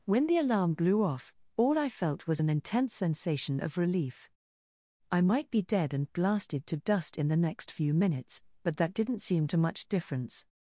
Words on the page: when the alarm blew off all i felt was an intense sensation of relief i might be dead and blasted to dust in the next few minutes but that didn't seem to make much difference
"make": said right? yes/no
no